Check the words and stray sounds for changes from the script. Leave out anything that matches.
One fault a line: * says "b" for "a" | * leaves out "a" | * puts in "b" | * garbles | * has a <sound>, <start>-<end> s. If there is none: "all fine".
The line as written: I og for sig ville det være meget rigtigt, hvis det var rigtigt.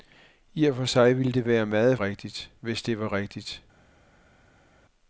all fine